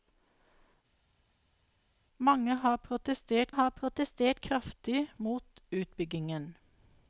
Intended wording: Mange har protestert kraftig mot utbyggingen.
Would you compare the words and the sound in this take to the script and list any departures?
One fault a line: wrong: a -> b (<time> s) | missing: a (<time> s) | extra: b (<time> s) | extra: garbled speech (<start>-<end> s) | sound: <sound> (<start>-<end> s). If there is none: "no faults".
extra: har protestert (3.5 s)